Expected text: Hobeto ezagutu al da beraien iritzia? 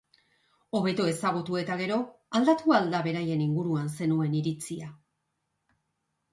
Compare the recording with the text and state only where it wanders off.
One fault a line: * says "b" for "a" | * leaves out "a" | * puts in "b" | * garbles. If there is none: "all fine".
* puts in "eta gero aldatu"
* puts in "inguruan zenuen"